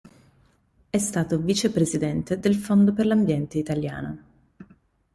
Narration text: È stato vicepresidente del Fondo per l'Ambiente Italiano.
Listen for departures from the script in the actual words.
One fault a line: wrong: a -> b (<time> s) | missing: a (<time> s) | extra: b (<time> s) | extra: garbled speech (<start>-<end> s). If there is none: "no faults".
no faults